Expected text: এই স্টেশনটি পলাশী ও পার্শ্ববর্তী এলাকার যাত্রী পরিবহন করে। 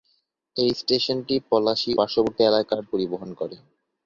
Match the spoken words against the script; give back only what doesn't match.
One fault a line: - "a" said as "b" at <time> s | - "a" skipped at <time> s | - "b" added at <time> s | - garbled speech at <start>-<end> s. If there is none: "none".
- "ও" skipped at 1.9 s
- "যাত্রী" skipped at 2.8 s